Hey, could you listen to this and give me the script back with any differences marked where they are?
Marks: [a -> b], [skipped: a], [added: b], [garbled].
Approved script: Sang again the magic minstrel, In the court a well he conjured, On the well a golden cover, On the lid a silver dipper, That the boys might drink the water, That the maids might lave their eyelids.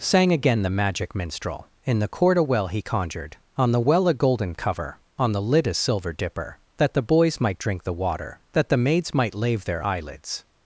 Sang again the magic minstrel, In the court a well he conjured, On the well a golden cover, On the lid a silver dipper, That the boys might drink the water, That the maids might lave their eyelids.